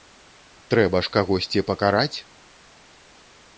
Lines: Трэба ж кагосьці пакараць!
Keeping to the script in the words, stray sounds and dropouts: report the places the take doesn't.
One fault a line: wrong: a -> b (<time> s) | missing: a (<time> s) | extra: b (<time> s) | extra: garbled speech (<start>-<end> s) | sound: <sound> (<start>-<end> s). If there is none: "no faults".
no faults